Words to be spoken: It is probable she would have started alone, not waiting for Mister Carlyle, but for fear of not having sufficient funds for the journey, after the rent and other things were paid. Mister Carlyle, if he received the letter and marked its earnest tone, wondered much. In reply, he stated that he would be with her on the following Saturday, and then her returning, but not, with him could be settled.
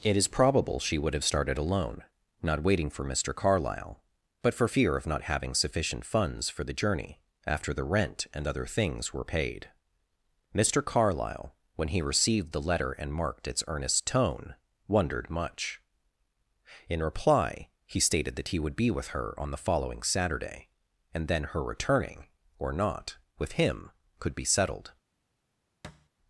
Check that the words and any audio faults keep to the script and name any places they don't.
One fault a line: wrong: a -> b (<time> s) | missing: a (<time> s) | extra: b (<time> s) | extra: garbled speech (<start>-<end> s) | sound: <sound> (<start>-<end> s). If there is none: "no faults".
wrong: if -> when (11.8 s)
wrong: but -> or (22.6 s)
sound: thud (25.8-26.1 s)